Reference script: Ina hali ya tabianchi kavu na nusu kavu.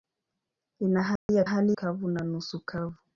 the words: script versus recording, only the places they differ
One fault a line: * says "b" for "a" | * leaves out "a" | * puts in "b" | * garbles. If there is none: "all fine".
* says "hali" for "tabianchi"